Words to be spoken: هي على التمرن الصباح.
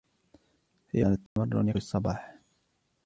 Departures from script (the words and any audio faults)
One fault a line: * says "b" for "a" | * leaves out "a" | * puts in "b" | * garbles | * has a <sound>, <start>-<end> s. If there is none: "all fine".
* has a dropout, 1.3-1.4 s